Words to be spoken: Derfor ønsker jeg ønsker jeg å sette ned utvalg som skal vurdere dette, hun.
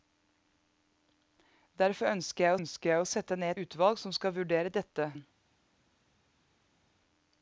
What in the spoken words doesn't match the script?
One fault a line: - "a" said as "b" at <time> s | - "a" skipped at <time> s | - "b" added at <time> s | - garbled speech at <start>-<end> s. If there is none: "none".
none